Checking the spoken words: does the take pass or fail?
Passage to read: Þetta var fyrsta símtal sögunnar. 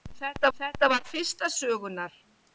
fail